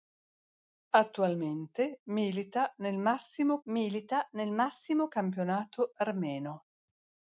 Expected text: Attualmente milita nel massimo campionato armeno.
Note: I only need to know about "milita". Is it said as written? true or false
true